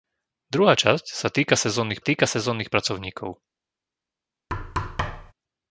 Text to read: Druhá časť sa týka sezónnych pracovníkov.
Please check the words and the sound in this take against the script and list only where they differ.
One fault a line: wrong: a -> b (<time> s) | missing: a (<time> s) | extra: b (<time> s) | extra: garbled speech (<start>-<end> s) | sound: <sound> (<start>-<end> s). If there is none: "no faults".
extra: týka sezónnych (2.0 s)
sound: thud (4.5-5.3 s)